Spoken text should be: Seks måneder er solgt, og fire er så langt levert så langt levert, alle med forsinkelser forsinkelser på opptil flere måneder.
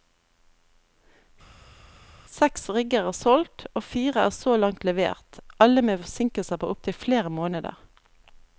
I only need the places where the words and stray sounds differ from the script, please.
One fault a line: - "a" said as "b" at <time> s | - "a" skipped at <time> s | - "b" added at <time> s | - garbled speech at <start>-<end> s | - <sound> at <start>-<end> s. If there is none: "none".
- "måneder" said as "rigger" at 2.8 s
- "så langt levert" skipped at 5.4 s
- "forsinkelser" skipped at 6.6 s